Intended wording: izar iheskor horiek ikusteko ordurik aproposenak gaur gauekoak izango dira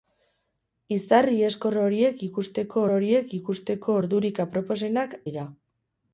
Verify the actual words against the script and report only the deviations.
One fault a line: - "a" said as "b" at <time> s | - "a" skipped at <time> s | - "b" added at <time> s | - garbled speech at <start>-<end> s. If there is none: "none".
- "horiek ikusteko" added at 2.9 s
- "gaur gauekoak izango" skipped at 5.1 s